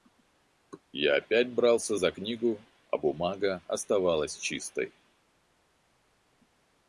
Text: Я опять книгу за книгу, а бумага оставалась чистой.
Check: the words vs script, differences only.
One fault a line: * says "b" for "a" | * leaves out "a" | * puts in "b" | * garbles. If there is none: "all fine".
* says "брался" for "книгу"